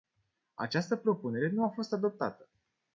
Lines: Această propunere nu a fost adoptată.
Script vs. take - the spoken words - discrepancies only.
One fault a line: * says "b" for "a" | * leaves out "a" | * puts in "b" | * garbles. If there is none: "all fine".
all fine